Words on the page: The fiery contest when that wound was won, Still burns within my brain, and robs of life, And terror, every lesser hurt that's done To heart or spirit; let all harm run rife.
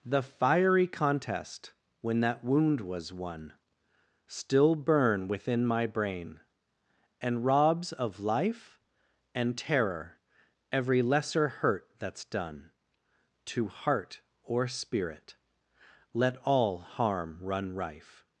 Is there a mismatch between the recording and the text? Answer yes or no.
yes